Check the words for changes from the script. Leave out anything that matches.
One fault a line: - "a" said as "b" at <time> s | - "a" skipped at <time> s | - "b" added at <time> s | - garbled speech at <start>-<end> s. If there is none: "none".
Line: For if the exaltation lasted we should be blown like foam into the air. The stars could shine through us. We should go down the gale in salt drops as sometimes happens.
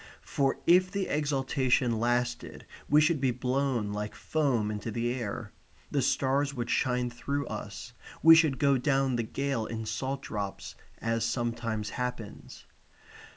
- "could" said as "would" at 6.5 s